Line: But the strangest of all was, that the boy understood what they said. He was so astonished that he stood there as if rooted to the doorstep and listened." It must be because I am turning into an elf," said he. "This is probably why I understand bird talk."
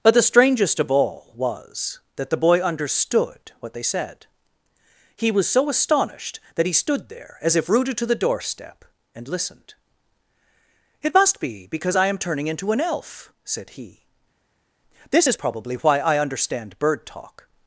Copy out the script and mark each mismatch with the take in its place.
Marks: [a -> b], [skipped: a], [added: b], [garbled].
But the strangest of all was, that the boy understood what they said. He was so astonished that he stood there as if rooted to the doorstep and listened." It must be because I am turning into an elf," said he. "This is probably why I understand bird talk."